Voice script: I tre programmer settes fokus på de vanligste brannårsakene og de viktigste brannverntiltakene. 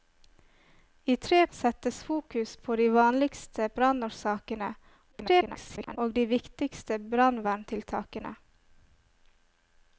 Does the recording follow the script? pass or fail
fail